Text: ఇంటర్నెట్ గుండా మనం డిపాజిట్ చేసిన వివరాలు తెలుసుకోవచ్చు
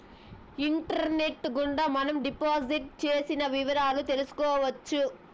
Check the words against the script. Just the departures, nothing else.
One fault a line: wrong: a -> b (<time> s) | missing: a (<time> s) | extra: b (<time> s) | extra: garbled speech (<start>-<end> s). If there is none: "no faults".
no faults